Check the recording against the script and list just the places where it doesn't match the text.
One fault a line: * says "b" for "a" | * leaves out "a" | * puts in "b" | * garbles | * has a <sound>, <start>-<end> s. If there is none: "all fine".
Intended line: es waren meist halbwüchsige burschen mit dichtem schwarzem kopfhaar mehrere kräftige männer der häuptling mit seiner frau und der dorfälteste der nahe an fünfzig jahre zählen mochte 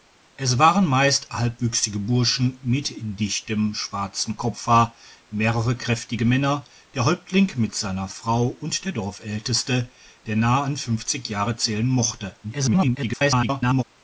* garbles